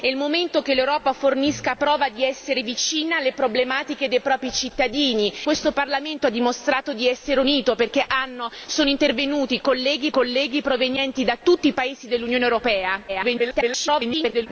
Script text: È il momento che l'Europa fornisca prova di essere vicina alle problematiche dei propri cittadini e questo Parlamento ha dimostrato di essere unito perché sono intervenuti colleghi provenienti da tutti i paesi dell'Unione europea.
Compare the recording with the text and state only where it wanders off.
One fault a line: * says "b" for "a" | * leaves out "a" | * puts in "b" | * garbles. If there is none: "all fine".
* leaves out "e"
* puts in "colleghi"
* garbles